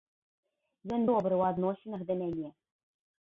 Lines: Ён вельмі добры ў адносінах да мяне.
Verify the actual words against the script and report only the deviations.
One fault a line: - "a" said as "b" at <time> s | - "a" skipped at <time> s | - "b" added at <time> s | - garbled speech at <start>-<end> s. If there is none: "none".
- "вельмі" skipped at 1.0 s